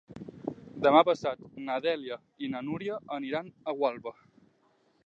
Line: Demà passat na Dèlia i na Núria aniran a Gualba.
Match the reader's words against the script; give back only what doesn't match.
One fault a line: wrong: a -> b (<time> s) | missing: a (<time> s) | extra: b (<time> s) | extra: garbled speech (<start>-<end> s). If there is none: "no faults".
no faults